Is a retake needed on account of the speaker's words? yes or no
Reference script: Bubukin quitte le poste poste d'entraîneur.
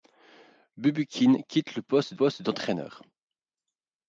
no